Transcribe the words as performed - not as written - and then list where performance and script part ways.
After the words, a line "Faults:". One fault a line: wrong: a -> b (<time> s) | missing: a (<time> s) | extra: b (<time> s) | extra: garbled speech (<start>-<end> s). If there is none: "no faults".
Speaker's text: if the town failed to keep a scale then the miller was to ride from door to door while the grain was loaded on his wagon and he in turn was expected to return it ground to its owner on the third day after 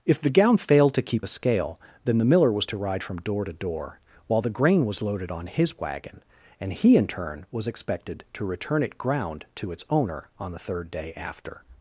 if the gown failed to keep a scale then the miller was to ride from door to door while the grain was loaded on his wagon and he in turn was expected to return it ground to its owner on the third day after
Faults:
wrong: town -> gown (0.3 s)